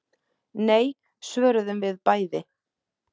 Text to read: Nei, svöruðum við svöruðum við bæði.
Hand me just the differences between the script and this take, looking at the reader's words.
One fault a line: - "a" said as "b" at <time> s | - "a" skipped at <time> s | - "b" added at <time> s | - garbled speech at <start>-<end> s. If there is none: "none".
- "svöruðum við" skipped at 2.0 s